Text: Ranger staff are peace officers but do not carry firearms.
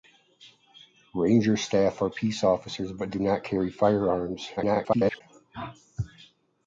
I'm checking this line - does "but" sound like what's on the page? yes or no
yes